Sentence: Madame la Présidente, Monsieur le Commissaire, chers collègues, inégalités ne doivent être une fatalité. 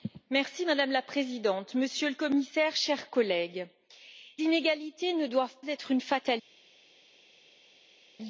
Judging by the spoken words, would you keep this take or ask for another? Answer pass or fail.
pass